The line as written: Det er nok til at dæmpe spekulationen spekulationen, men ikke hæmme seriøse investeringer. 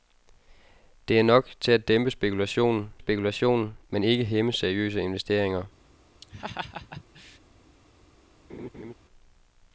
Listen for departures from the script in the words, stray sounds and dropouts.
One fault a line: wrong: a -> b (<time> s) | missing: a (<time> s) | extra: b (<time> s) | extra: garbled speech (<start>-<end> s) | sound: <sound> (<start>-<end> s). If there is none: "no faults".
sound: laugh (6.2-7.4 s)
sound: laugh (8.5-8.9 s)